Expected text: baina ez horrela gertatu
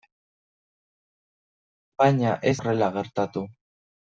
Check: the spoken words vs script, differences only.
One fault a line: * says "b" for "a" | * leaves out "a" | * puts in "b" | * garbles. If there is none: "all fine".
all fine